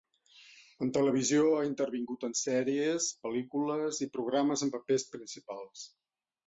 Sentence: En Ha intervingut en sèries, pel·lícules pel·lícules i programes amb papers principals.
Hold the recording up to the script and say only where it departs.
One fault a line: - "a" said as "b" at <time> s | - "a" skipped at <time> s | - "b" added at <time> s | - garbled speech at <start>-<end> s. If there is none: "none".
- "Televisió" added at 0.9 s
- "pel·lícules" skipped at 4.0 s